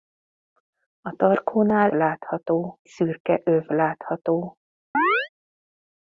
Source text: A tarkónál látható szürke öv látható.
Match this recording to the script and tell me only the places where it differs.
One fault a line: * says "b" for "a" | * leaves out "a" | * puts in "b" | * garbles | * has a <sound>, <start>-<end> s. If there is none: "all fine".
* has a chirp, 4.9-5.3 s